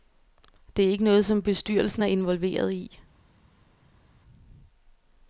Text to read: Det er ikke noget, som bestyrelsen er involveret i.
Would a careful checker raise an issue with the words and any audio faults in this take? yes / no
no